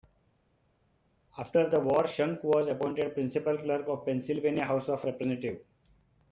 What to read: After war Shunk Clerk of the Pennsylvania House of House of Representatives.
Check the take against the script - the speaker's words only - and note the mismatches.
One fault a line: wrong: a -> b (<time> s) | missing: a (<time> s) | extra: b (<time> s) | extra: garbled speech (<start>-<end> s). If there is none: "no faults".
extra: the (1.7 s)
extra: was appointed Principal (2.4 s)
missing: House of (5.0 s)